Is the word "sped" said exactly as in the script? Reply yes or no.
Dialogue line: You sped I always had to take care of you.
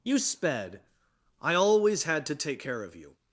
yes